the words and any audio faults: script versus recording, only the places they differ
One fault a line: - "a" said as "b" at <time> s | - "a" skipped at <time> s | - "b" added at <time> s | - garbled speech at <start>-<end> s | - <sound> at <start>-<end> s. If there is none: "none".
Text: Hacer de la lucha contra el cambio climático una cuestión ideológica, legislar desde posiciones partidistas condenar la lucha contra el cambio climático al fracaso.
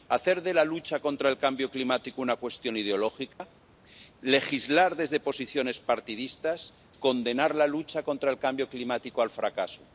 - dropout at 3.3-3.4 s